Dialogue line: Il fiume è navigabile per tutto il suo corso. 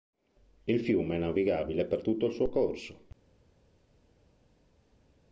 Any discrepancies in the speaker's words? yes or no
no